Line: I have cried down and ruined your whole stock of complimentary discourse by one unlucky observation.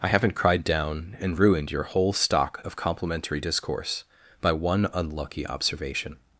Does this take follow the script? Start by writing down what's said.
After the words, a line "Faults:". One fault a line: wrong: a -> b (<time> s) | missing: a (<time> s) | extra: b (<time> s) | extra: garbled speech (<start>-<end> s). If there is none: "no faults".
I haven't cried down and ruined your whole stock of complimentary discourse by one unlucky observation.
Faults:
wrong: have -> haven't (0.0 s)